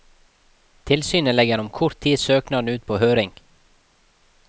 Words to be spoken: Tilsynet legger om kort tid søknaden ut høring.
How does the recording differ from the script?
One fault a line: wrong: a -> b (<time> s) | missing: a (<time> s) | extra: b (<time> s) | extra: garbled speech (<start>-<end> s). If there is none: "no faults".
extra: på (2.9 s)